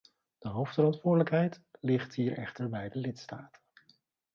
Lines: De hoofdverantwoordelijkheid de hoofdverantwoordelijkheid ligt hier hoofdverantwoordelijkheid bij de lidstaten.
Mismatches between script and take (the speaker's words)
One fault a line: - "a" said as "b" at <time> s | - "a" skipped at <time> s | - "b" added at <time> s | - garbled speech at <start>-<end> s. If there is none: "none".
- "de hoofdverantwoordelijkheid" skipped at 1.6 s
- "hoofdverantwoordelijkheid" said as "echter" at 2.4 s